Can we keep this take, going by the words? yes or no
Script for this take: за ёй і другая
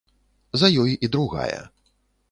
yes